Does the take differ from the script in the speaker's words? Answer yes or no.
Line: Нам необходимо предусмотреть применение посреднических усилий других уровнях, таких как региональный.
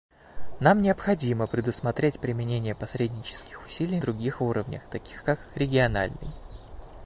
no